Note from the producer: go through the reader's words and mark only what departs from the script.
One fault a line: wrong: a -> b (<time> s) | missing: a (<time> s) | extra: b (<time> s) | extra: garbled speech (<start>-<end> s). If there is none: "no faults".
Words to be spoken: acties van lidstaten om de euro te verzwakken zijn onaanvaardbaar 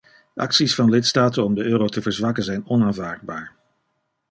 no faults